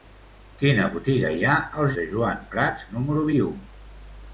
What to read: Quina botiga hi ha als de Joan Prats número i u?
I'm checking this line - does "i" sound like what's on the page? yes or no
yes